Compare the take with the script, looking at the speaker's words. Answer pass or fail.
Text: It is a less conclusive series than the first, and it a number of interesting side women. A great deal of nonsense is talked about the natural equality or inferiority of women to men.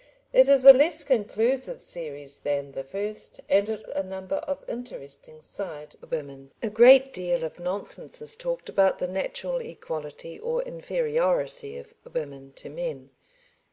pass